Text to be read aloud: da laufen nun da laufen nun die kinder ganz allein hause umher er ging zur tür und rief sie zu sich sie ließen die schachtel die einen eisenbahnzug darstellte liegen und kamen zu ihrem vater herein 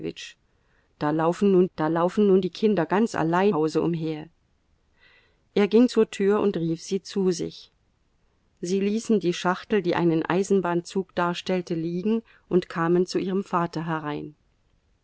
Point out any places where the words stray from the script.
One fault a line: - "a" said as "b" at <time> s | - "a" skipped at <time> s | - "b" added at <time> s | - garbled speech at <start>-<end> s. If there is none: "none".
none